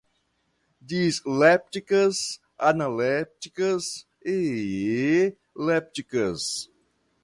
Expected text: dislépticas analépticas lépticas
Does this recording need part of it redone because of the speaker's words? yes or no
yes